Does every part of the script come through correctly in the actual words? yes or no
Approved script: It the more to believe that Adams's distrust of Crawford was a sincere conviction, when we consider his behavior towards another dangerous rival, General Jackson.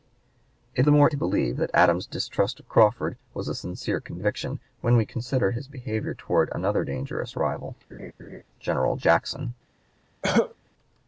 yes